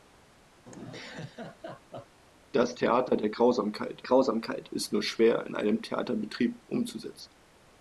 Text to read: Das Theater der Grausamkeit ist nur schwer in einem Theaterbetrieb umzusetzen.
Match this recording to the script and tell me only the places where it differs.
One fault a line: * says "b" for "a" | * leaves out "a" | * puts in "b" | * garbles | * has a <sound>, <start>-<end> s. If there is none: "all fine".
* has a laugh, 0.7-2.2 s
* puts in "Grausamkeit"